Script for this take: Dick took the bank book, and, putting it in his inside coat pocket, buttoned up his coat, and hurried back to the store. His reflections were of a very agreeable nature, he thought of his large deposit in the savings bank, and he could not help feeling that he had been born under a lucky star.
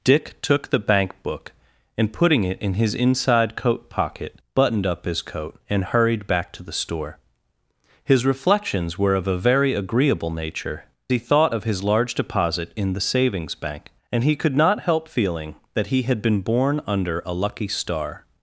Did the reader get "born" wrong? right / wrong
right